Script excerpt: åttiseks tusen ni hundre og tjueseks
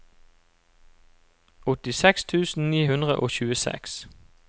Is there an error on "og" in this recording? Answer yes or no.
no